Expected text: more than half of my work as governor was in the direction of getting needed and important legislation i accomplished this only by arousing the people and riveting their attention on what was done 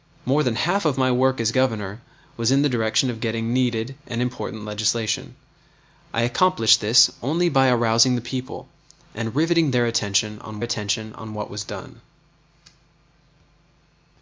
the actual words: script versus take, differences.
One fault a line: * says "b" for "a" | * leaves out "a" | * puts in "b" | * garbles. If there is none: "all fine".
* puts in "attention on"